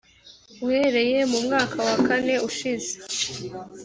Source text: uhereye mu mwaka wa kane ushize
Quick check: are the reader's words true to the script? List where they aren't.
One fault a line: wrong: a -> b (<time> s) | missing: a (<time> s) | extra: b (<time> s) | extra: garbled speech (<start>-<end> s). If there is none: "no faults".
no faults